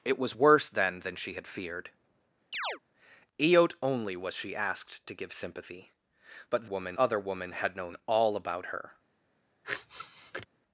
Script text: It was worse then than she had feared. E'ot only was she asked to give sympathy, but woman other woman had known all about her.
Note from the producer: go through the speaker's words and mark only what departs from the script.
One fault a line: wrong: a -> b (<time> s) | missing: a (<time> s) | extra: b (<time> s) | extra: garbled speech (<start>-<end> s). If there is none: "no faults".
no faults